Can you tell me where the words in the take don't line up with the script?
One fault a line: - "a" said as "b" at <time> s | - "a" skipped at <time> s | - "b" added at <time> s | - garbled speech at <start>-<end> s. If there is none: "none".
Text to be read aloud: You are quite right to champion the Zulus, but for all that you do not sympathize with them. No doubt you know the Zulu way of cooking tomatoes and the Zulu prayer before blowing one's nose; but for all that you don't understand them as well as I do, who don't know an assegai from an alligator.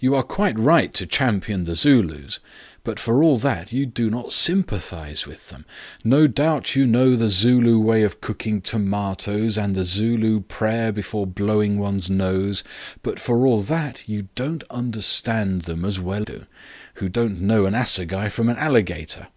- "as I" skipped at 16.3 s